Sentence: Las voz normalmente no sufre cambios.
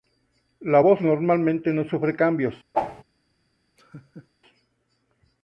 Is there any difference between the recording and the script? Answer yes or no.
yes